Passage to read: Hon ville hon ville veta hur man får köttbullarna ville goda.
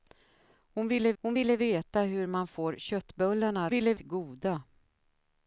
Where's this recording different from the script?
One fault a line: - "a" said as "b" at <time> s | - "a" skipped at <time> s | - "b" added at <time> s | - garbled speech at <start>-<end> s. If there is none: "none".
none